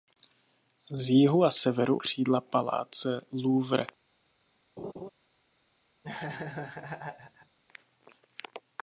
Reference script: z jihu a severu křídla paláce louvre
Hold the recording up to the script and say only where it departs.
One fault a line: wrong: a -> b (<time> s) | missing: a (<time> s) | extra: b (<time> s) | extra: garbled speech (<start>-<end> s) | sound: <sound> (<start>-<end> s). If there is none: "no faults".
sound: laugh (4.8-5.1 s)
sound: laugh (6.0-7.6 s)